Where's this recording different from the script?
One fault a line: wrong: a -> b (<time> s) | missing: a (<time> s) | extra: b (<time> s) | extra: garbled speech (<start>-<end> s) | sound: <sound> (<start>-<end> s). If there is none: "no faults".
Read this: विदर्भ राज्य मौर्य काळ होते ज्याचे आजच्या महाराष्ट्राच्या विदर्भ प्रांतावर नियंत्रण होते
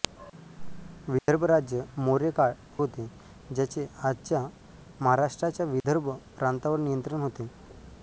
sound: dropout (1.2-1.3 s)
sound: dropout (5.8-5.8 s)